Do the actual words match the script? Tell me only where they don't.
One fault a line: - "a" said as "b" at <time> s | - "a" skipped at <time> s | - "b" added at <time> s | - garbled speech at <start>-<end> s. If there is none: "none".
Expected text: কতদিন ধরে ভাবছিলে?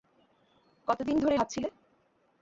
none